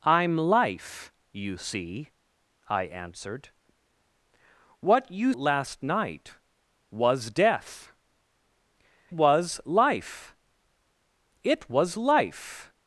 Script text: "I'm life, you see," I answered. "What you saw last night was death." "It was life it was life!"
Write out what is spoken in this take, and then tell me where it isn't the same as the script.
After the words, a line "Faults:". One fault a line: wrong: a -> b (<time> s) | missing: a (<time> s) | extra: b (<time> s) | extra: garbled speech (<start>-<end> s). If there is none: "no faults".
"I'm life, you see," I answered. "What you last night was death." "Was life it was life!"
Faults:
missing: saw (5.3 s)
missing: It (7.9 s)